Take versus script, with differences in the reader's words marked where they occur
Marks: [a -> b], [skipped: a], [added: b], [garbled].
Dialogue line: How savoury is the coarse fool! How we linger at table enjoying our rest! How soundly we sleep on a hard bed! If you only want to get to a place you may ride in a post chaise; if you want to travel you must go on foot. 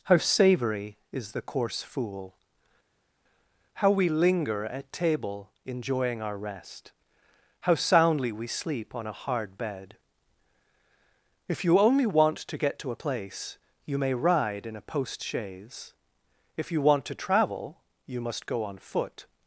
How savoury is the coarse fool! How we linger at table enjoying our rest! How soundly we sleep on a hard bed! If you only want to get to a place you may ride in a post chaise; if you want to travel you must go on foot.